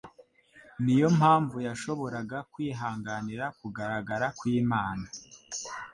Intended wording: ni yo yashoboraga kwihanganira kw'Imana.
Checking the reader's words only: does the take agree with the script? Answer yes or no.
no